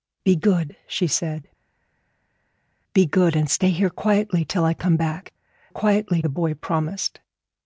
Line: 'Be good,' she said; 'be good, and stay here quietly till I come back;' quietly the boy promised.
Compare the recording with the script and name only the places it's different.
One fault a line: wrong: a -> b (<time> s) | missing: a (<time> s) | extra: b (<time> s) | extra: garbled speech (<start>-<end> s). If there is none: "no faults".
no faults